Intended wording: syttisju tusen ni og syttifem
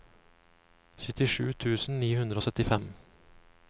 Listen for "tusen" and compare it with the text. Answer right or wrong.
right